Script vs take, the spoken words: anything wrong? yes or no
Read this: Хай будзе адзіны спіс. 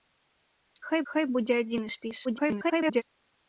yes